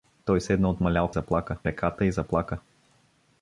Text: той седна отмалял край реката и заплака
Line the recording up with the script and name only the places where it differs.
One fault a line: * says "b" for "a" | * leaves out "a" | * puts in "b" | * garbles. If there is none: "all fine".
* says "заплака" for "край"